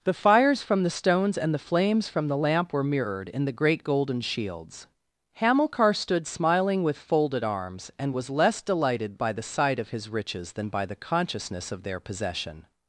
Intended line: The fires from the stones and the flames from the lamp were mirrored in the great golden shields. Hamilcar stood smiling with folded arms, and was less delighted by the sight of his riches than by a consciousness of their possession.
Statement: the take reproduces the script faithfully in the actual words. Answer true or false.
false